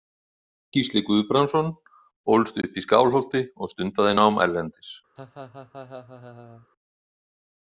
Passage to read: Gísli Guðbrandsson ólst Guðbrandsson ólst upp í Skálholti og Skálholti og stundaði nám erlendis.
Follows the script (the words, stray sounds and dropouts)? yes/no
no